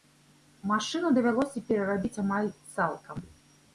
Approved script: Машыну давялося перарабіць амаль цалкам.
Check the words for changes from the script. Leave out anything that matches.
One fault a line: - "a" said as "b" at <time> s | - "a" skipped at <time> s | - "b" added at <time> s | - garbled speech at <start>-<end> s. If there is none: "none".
none